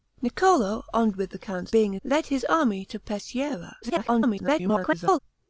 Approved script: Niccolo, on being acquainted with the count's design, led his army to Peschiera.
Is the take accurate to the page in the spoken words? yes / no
no